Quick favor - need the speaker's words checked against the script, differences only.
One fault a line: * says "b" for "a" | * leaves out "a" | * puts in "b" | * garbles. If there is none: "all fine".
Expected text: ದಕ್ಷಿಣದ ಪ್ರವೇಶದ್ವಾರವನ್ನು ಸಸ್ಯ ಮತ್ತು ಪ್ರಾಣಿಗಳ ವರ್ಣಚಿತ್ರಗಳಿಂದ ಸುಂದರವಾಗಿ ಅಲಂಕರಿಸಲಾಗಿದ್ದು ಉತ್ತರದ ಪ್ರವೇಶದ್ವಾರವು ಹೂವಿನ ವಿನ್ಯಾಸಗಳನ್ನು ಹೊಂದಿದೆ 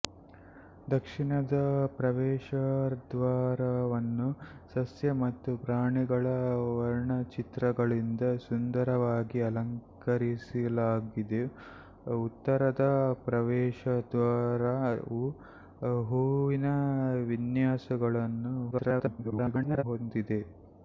* garbles